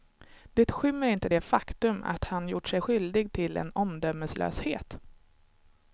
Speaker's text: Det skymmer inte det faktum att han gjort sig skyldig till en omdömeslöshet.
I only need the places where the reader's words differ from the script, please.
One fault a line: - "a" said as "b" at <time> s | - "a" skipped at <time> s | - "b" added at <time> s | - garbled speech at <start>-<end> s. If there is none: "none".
none